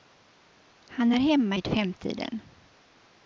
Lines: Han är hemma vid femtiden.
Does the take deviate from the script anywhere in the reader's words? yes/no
no